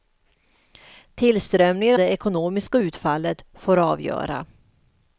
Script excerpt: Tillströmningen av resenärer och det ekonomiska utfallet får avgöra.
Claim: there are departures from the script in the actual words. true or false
true